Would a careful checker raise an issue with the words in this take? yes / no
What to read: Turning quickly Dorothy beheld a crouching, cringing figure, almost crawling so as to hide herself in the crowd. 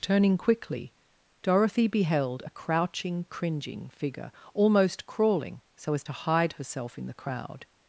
no